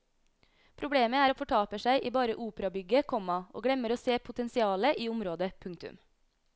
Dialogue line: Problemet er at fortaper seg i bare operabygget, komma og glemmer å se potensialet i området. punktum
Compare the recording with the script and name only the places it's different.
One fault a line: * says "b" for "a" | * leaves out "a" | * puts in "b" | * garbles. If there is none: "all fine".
all fine